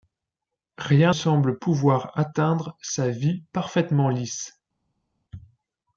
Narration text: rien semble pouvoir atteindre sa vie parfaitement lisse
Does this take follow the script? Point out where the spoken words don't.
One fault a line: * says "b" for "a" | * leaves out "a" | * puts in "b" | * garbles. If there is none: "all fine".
all fine